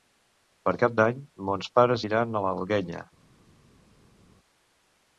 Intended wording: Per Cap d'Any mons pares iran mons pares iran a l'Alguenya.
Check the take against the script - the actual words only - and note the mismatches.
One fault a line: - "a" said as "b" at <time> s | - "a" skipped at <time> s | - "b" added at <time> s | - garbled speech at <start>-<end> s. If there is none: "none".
- "mons pares iran" skipped at 2.4 s